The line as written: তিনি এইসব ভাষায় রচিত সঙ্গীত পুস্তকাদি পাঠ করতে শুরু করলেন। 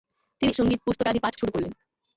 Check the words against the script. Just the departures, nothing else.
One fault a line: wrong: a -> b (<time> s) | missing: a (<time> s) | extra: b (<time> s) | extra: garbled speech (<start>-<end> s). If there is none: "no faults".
missing: এইসব ভাষায় রচিত (0.5 s)
missing: করতে (1.3 s)